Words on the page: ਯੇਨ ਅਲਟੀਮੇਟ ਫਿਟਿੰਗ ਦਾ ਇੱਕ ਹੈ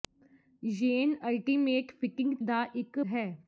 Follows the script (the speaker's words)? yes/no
yes